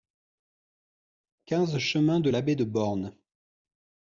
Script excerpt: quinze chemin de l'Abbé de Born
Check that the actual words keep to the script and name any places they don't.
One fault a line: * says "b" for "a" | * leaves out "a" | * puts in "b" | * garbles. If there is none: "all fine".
all fine